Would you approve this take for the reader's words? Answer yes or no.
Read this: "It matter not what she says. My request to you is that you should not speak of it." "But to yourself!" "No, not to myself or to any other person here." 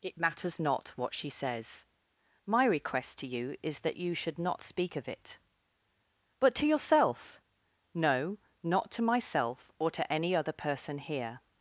no